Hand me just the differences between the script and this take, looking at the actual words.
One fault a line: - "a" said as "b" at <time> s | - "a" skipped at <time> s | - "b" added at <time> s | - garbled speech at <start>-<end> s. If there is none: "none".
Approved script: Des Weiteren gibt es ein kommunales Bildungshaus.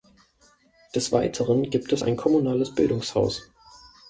none